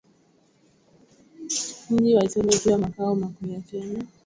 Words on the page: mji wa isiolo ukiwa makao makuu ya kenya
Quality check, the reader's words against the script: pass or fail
pass